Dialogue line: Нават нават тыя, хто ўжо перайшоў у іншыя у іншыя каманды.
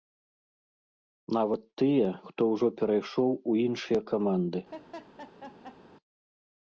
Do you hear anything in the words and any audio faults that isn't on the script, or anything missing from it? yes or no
yes